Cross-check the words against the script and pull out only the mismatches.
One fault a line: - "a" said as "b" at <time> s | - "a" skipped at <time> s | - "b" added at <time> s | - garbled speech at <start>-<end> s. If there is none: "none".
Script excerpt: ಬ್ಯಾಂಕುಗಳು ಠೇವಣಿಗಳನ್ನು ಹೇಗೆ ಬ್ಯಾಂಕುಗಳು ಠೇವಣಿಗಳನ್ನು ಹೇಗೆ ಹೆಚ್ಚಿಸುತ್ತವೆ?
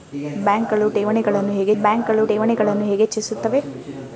none